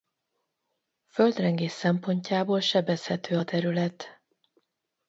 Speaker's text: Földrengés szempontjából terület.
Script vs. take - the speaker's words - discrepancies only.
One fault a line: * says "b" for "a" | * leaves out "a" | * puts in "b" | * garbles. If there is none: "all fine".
* puts in "sebezhető a"